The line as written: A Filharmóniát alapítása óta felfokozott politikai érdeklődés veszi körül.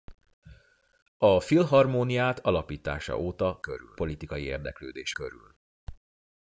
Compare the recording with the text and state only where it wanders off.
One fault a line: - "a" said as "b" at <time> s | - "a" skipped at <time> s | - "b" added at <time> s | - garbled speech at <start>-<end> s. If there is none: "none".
- "felfokozott" said as "körül" at 3.6 s
- "veszi" skipped at 5.1 s